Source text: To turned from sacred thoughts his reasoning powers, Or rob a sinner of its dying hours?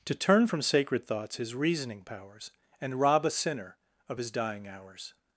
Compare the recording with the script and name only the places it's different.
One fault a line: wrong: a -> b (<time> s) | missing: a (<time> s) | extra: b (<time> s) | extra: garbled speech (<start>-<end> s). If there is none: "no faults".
wrong: turned -> turn (0.1 s)
wrong: Or -> And (2.8 s)
wrong: its -> his (4.2 s)